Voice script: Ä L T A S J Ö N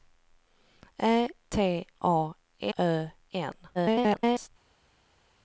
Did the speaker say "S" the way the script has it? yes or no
no